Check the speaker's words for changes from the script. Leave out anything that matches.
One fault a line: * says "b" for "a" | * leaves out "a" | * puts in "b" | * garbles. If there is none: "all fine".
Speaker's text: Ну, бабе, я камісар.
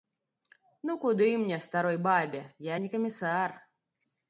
* puts in "куды мне старой"
* puts in "не"